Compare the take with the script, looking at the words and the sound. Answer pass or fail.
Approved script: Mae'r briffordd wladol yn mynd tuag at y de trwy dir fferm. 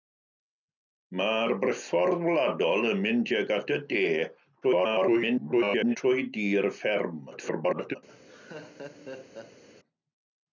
fail